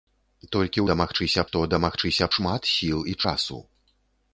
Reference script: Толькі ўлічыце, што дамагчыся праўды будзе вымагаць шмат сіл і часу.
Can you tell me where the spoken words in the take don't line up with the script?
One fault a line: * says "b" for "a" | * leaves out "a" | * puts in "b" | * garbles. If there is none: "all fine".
* says "дамагчыся" for "ўлічыце"
* leaves out "праўды будзе вымагаць"